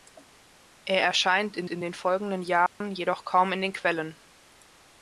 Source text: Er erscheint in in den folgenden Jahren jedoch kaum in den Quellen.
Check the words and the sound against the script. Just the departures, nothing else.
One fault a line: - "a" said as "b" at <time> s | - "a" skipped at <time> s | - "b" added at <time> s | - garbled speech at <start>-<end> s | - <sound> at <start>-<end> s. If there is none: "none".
- dropout at 2.7-2.8 s